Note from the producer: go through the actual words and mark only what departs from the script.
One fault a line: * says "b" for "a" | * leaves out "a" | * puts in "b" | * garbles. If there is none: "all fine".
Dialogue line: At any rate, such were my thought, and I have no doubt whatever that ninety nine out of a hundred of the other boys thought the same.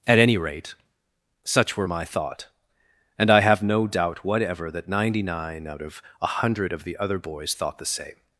all fine